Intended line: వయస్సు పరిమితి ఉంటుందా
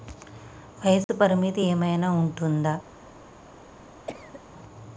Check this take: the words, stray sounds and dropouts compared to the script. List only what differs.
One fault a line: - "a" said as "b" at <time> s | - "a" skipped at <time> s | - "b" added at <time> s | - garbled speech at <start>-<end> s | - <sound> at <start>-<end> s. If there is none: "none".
- dropout at 1.0-1.1 s
- "ఏమైనా" added at 1.6 s
- cough at 4.1-4.4 s